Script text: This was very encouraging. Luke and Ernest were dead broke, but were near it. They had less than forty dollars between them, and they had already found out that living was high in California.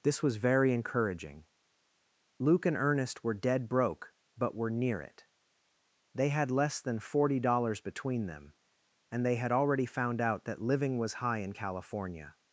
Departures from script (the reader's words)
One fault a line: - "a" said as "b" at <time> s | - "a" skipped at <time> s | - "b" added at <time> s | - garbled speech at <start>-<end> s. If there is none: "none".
none